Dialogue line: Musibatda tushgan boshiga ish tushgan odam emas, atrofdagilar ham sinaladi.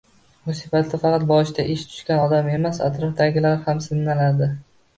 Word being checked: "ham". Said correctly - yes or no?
yes